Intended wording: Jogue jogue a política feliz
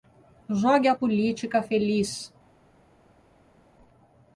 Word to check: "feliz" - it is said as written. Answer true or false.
true